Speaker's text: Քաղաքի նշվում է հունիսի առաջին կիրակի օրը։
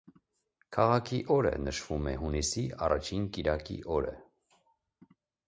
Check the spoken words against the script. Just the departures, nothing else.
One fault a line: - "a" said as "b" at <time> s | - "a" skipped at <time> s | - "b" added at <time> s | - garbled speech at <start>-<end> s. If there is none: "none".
- "օրը" added at 1.4 s